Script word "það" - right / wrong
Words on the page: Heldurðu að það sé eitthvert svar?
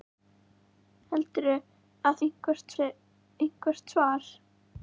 wrong